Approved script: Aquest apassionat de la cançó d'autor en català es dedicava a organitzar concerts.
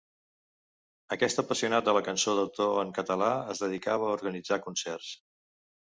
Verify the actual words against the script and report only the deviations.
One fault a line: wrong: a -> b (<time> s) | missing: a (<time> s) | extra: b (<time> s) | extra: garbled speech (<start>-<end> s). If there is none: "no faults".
no faults